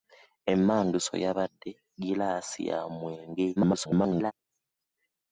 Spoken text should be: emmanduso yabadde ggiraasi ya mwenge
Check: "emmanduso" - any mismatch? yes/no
no